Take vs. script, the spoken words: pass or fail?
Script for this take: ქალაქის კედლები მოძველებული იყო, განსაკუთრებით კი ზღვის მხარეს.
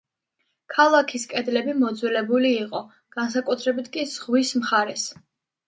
pass